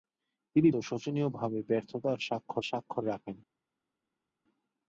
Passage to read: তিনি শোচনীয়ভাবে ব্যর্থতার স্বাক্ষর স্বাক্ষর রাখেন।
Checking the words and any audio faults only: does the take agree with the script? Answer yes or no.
yes